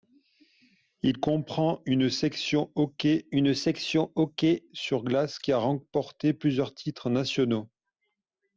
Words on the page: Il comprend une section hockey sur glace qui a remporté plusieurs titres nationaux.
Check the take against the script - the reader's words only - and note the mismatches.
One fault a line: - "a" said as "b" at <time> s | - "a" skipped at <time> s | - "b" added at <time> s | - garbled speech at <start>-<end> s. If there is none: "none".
- "une section hockey" added at 3.3 s